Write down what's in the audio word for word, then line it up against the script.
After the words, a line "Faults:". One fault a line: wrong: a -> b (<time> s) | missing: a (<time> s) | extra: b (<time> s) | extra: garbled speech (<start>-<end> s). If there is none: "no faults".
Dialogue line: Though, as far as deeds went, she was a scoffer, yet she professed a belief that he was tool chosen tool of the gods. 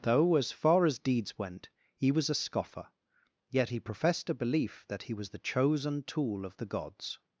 Though, as far as deeds went, he was a scoffer, yet he professed a belief that he was the chosen tool of the gods.
Faults:
wrong: she -> he (1.9 s)
wrong: she -> he (3.7 s)
wrong: tool -> the (5.3 s)